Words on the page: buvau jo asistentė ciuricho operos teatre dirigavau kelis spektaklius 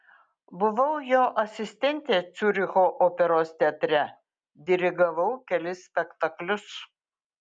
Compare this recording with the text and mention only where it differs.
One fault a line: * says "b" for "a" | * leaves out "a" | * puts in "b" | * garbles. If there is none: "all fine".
all fine